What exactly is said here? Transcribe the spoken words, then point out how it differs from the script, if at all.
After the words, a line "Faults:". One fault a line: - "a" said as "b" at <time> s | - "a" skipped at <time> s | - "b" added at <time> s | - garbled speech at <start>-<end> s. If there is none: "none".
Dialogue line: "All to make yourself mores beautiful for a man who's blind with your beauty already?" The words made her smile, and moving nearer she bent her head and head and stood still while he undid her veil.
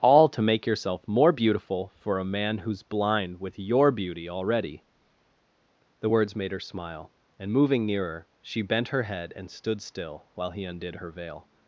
"All to make yourself more beautiful for a man who's blind with your beauty already?" The words made her smile, and moving nearer she bent her head and stood still while he undid her veil.
Faults:
- "mores" said as "more" at 1.1 s
- "head and" skipped at 9.5 s